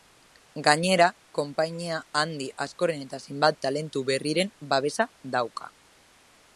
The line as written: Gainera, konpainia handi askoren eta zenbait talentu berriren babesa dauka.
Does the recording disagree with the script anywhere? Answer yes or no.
no